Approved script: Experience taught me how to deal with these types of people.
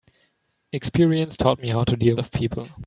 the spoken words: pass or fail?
fail